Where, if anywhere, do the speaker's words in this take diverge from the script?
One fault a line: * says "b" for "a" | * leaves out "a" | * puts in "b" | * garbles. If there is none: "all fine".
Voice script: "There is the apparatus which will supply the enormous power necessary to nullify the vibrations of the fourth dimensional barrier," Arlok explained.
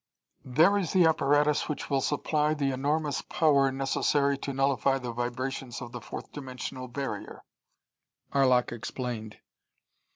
all fine